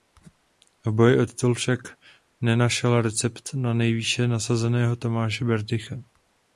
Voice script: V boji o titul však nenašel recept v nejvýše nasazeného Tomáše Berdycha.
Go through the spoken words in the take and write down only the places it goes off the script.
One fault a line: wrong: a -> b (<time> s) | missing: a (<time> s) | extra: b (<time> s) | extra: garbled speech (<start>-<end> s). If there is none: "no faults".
wrong: v -> na (3.5 s)